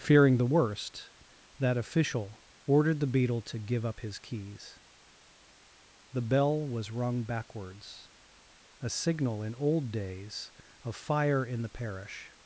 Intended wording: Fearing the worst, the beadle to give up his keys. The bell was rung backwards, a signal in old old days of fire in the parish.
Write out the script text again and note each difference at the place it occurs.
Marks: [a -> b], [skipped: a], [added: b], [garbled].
Fearing the worst, [added: that official ordered] the beadle to give up his keys. The bell was rung backwards, a signal in old [skipped: old] days of fire in the parish.